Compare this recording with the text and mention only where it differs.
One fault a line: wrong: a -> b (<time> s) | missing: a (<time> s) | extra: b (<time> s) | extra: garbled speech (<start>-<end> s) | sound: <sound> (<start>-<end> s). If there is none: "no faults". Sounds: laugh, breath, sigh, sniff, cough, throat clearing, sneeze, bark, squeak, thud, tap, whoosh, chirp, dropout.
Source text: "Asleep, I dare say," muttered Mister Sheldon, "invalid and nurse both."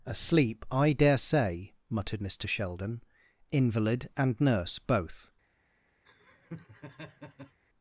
sound: laugh (6.0-7.6 s)